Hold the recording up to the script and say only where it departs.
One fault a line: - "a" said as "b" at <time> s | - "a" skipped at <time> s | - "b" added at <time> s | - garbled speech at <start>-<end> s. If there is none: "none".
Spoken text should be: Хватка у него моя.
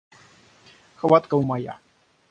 - "него" skipped at 1.4 s